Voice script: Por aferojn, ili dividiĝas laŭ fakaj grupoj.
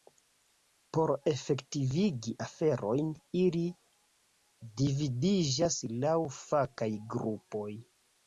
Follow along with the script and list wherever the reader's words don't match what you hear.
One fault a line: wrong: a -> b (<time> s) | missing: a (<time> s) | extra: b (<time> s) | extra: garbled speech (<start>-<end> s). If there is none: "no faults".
extra: efektivigi (1.3 s)